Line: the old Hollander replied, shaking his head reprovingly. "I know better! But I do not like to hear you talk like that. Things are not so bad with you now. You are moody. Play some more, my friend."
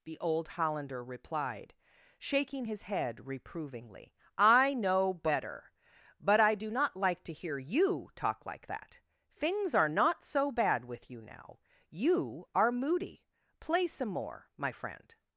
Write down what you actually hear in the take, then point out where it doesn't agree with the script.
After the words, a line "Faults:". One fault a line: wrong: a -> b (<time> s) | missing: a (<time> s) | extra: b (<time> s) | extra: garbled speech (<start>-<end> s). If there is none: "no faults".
the old Hollander replied, shaking his head reprovingly. "I know better! But I do not like to hear you talk like that. Things are not so bad with you now. You are moody. Play some more, my friend."
Faults:
no faults